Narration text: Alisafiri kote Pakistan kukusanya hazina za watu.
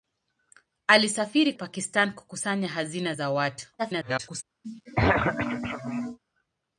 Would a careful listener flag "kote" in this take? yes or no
yes